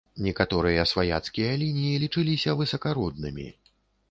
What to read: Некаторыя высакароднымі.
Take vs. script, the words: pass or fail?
fail